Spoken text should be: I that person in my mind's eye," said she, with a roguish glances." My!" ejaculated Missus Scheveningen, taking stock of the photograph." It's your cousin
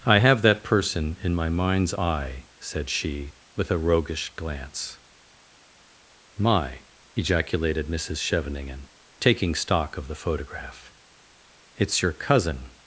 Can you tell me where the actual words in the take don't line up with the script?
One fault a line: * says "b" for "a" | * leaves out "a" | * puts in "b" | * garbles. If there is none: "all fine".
* puts in "have"
* says "glance" for "glances"